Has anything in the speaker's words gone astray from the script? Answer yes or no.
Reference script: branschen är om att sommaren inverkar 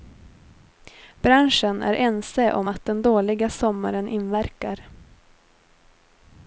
yes